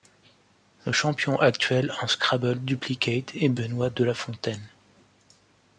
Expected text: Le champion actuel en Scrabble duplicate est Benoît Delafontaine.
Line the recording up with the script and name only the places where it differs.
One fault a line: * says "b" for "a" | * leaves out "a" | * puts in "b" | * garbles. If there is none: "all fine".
all fine